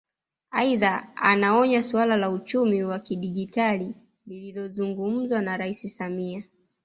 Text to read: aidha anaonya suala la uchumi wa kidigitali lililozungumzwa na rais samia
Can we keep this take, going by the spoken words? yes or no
yes